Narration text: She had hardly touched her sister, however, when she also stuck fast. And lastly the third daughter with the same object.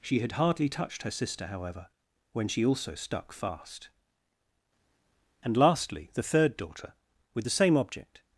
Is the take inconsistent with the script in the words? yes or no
no